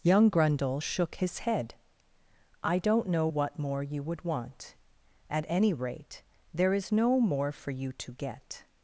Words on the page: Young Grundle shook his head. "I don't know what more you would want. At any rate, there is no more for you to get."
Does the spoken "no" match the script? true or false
true